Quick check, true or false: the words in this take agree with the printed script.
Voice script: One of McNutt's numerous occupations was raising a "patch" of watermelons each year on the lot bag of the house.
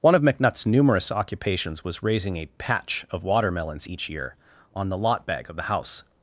true